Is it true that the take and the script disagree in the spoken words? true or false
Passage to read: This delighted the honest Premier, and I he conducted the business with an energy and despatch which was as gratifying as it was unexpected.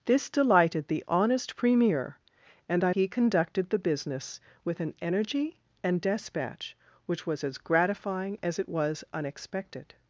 false